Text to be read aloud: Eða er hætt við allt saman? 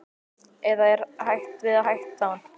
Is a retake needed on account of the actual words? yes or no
yes